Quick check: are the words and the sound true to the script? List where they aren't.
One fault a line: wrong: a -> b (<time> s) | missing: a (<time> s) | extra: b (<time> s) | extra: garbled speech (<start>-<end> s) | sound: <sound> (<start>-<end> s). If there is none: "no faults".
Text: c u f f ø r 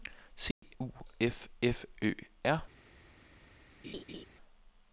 sound: dropout (0.5-0.6 s)
sound: laugh (3.8-4.3 s)